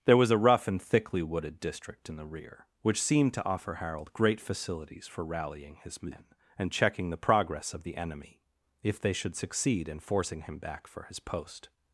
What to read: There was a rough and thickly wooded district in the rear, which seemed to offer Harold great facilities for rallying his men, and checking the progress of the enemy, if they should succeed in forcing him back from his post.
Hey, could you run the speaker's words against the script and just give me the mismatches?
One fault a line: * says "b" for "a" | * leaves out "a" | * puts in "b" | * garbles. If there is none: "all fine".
* says "for" for "from"